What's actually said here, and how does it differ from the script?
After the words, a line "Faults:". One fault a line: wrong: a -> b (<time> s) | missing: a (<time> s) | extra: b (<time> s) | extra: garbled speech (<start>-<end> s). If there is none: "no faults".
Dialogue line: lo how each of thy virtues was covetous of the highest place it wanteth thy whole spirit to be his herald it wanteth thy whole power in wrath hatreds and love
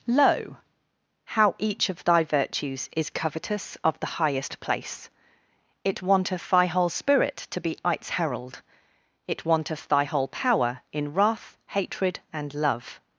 lo how each of thy virtues is covetous of the highest place it wanteth thy whole spirit to be its herald it wanteth thy whole power in wrath hatred and love
Faults:
wrong: was -> is (3.0 s)
wrong: his -> its (7.8 s)
wrong: hatreds -> hatred (11.7 s)